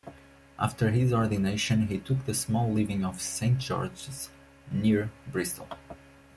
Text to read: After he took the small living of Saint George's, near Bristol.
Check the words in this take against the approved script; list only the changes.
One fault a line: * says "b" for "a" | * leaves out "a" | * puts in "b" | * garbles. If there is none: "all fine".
* puts in "his ordination"